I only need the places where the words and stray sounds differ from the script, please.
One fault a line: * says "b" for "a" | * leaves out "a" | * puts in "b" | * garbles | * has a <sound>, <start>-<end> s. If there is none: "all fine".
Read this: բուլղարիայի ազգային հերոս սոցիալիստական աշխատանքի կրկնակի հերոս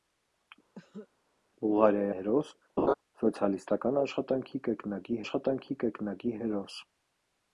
* has a cough, 0.7-1.1 s
* leaves out "ազգային"
* has a laugh, 2.8-2.9 s
* puts in "աշխատանքի կրկնակի"